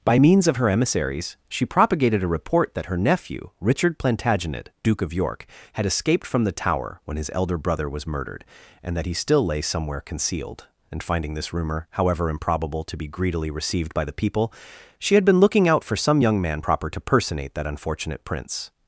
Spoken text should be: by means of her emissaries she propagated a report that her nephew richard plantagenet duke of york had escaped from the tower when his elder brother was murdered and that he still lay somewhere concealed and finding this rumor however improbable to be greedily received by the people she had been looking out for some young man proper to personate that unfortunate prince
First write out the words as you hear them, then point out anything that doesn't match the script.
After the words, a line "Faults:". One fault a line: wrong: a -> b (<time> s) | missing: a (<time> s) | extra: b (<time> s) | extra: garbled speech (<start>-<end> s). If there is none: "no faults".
by means of her emissaries she propagated a report that her nephew richard plantagenet duke of york had escaped from the tower when his elder brother was murdered and that he still lay somewhere concealed and finding this rumor however improbable to be greedily received by the people she had been looking out for some young man proper to personate that unfortunate prince
Faults:
no faults